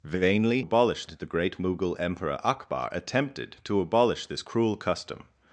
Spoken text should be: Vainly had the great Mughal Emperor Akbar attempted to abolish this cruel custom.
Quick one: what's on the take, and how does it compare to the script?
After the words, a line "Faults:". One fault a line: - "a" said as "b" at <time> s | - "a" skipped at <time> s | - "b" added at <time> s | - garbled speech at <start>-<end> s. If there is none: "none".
Vainly abolish the great Mughal Emperor Akbar attempted to abolish this cruel custom.
Faults:
- "had" said as "abolish" at 0.6 s